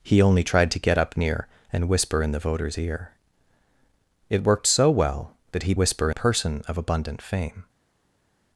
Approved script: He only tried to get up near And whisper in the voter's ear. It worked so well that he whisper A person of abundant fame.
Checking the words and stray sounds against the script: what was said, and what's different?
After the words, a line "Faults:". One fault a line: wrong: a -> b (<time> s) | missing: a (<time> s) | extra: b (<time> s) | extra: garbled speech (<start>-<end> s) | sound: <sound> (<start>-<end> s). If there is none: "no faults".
He only tried to get up near And whisper in the voter's ear. It worked so well that he whisper A person of abundant fame.
Faults:
no faults